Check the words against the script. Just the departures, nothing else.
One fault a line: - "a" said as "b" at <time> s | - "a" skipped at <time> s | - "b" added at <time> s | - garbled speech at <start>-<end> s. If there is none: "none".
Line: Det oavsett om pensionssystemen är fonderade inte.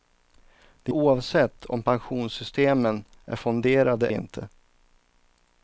none